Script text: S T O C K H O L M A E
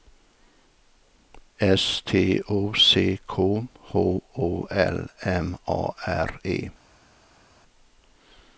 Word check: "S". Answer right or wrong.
right